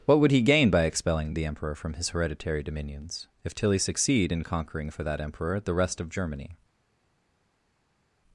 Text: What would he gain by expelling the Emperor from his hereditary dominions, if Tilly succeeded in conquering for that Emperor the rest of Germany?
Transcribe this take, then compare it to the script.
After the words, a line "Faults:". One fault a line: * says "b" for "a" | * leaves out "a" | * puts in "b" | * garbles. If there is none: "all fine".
What would he gain by expelling the Emperor from his hereditary dominions, if Tilly succeed in conquering for that Emperor the rest of Germany?
Faults:
* says "succeed" for "succeeded"